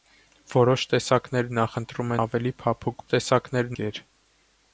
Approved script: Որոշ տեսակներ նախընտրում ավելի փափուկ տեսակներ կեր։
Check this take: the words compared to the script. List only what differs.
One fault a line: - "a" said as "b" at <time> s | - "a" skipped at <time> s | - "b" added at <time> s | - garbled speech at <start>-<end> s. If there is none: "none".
none